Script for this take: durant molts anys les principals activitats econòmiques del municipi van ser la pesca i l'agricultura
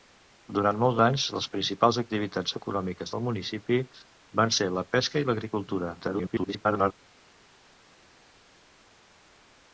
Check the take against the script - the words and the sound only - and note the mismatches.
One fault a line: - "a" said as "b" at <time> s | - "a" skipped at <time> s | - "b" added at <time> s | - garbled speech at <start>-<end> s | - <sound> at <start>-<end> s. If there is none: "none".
- garbled speech at 6.0-6.9 s